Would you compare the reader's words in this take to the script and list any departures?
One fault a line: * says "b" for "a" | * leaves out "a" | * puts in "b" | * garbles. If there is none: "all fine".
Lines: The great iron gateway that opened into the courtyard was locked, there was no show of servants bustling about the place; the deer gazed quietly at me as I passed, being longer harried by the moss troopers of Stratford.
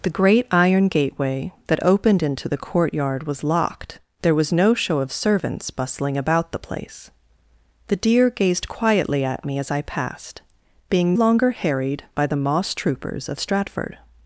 all fine